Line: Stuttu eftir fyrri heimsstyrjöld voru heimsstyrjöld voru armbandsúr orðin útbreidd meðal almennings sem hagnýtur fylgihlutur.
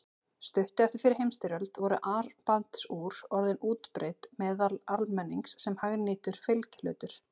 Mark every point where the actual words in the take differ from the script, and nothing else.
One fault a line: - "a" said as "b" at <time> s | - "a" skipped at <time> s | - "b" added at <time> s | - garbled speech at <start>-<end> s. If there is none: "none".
- "heimsstyrjöld voru" skipped at 2.0 s